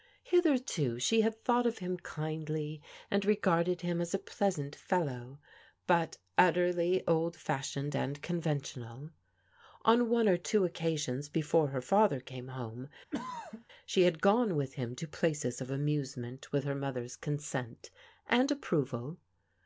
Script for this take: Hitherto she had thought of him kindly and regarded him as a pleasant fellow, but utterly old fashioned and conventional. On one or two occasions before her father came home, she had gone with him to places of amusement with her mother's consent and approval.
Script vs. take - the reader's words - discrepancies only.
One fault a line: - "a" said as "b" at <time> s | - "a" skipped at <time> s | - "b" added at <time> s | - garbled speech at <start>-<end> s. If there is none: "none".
none